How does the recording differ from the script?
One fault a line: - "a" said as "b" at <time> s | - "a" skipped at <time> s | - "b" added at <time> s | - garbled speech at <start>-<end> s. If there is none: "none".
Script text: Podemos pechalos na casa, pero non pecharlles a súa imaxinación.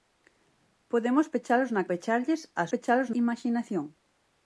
- "casa pero non" skipped at 1.9 s
- "súa" said as "pechalos" at 2.7 s